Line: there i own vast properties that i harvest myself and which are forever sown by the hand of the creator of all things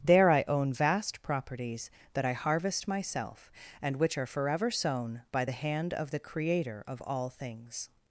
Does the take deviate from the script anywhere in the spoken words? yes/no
no